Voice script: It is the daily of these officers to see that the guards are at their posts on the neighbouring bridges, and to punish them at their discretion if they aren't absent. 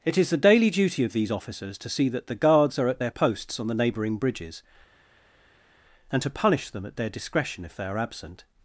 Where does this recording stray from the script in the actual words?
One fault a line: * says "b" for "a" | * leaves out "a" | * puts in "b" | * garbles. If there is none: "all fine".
* puts in "duty"
* says "are" for "aren't"